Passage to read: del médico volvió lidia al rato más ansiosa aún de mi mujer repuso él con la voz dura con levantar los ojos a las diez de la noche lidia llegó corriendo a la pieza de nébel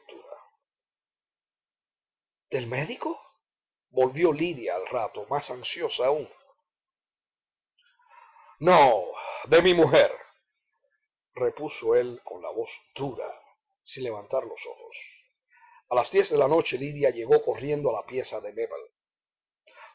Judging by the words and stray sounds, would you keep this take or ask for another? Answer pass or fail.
fail